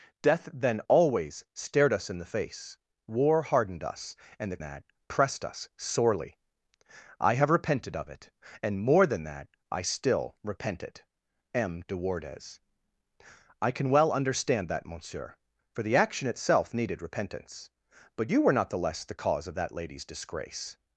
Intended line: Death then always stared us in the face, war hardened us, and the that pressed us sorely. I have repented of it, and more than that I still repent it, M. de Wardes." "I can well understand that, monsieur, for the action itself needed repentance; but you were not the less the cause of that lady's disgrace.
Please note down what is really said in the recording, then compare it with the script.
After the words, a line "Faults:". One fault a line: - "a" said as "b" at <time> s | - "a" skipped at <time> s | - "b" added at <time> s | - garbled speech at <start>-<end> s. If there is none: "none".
Death then always stared us in the face, war hardened us, and the that pressed us sorely. I have repented of it, and more than that I still repent it, M. de Wardes." "I can well understand that, monsieur, for the action itself needed repentance; but you were not the less the cause of that lady's disgrace.
Faults:
none